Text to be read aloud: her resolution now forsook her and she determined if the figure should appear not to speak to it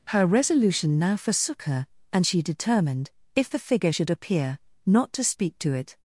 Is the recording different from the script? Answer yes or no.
no